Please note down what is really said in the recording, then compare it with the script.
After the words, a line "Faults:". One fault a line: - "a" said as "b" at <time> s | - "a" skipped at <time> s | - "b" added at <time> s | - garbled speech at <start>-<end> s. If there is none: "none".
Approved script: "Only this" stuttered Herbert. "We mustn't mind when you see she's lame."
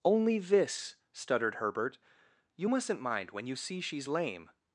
"Only this" stuttered Herbert. "You mustn't mind when you see she's lame."
Faults:
- "We" said as "You" at 2.5 s